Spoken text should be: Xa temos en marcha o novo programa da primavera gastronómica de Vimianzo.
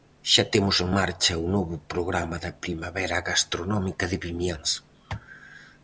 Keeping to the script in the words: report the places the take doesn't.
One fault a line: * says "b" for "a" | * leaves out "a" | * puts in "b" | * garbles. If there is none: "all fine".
all fine